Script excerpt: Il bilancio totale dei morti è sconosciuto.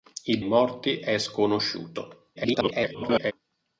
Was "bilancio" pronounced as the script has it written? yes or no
no